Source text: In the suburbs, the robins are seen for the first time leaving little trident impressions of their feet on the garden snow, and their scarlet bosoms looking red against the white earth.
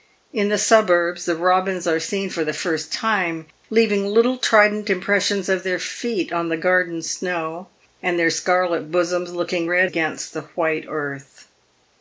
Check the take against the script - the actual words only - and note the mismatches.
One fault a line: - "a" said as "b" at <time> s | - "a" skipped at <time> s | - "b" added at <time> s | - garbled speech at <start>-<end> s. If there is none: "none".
none